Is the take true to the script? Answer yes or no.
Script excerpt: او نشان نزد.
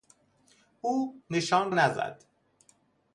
yes